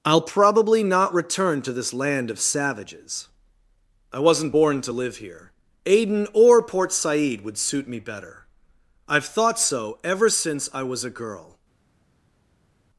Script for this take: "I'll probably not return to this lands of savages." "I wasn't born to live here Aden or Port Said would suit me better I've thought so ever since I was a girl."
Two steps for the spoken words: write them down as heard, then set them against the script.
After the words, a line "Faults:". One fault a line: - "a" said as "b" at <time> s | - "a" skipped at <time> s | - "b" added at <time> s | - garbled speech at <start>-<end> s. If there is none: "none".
"I'll probably not return to this land of savages." "I wasn't born to live here Aden or Port Said would suit me better I've thought so ever since I was a girl."
Faults:
- "lands" said as "land" at 1.9 s